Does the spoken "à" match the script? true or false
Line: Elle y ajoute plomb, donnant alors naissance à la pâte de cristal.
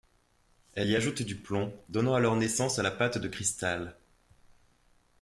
true